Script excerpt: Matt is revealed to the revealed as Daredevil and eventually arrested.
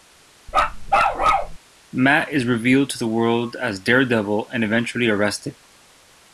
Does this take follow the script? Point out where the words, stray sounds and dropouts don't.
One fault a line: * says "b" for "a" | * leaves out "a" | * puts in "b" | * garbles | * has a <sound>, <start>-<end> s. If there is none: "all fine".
* has a bark, 0.5-1.6 s
* says "world" for "revealed"